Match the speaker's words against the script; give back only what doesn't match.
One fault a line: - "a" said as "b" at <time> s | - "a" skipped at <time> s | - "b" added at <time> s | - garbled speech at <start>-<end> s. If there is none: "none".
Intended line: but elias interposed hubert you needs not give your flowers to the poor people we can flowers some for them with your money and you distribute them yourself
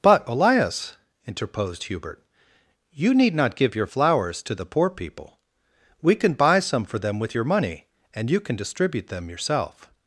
- "needs" said as "need" at 3.1 s
- "flowers" said as "buy" at 6.3 s
- "can" added at 8.4 s